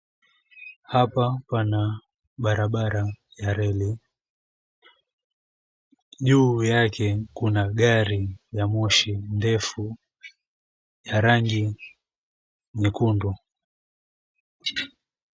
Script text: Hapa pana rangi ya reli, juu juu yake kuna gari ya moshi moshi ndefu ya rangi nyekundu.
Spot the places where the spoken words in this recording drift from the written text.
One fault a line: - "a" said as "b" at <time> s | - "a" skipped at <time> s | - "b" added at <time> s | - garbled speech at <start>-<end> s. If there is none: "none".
- "rangi" said as "barabara" at 2.4 s
- "juu" skipped at 6.6 s
- "moshi" skipped at 9.1 s